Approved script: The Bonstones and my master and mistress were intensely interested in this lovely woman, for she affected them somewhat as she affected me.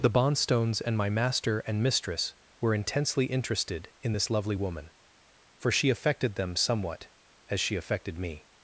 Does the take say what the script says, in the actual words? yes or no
yes